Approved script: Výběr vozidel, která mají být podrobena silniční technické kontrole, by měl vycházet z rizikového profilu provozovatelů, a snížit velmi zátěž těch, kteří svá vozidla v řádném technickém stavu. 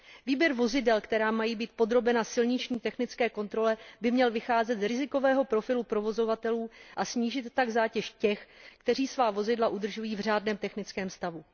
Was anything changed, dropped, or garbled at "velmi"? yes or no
yes